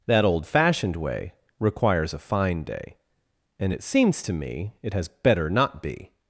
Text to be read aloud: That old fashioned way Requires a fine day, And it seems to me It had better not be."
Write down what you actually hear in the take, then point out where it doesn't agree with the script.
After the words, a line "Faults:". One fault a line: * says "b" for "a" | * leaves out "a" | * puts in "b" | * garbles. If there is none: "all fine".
That old fashioned way Requires a fine day, And it seems to me It has better not be."
Faults:
* says "has" for "had"